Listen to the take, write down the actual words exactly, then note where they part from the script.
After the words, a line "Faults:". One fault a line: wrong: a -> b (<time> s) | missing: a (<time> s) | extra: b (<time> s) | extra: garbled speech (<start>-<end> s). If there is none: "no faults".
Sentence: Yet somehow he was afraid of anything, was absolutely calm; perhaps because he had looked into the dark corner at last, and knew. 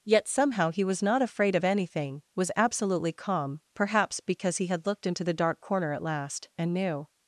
Yet somehow he was not afraid of anything, was absolutely calm; perhaps because he had looked into the dark corner at last, and knew.
Faults:
extra: not (1.0 s)